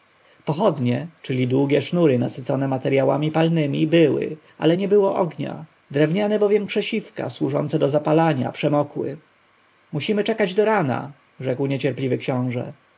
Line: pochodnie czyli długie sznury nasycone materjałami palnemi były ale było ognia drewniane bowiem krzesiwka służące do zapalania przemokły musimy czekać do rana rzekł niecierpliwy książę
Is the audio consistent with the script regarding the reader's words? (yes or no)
no